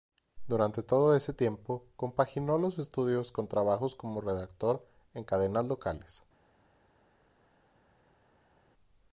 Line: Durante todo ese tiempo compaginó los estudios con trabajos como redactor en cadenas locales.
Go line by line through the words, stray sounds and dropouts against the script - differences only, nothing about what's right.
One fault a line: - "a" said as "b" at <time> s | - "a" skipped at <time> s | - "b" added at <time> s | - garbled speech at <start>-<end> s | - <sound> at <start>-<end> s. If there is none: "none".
none